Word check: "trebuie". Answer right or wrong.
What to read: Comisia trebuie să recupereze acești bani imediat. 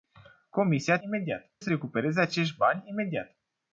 wrong